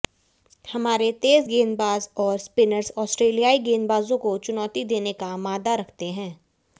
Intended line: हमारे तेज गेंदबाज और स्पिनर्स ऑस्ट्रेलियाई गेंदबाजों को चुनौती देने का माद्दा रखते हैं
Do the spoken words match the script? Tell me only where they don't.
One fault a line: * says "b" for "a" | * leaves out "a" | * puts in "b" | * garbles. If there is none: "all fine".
all fine